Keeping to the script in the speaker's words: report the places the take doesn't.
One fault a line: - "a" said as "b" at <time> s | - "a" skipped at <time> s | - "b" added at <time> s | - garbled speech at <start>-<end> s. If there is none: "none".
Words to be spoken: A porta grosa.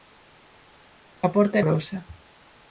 none